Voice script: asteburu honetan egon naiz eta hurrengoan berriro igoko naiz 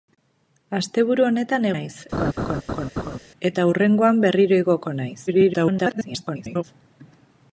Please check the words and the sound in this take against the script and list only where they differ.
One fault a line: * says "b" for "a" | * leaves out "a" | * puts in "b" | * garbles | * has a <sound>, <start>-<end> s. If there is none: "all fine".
* leaves out "egon"
* has a laugh, 2.1-3.2 s
* garbles